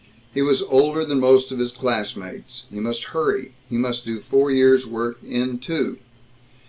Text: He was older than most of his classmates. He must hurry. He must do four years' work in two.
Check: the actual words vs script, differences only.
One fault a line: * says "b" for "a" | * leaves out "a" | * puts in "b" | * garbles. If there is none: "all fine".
all fine